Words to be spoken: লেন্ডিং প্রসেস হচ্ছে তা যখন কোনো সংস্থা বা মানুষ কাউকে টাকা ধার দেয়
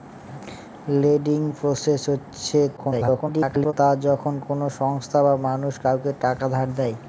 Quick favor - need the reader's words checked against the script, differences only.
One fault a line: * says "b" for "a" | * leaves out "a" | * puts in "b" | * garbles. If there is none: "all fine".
* garbles